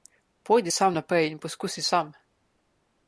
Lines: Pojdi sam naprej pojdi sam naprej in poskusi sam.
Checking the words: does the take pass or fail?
fail